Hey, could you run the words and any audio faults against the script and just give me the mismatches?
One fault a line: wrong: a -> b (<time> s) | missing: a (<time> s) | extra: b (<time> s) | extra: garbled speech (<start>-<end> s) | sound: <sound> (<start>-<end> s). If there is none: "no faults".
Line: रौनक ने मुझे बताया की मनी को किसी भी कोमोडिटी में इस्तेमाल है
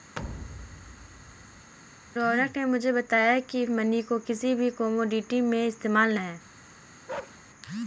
sound: thud (0.2-1.7 s)
sound: bark (7.1-7.4 s)